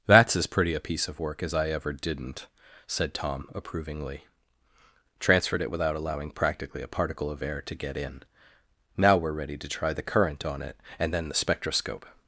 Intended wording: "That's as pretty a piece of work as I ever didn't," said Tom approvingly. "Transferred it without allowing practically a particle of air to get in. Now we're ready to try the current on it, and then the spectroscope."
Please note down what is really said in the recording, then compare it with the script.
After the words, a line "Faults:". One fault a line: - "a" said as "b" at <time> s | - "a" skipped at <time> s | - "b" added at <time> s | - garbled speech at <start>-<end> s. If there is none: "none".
"That's as pretty a piece of work as I ever didn't," said Tom approvingly. "Transferred it without allowing practically a particle of air to get in. Now we're ready to try the current on it, and then the spectroscope."
Faults:
none